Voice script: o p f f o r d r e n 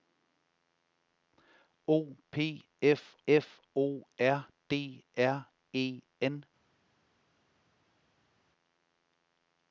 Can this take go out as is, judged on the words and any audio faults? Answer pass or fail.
pass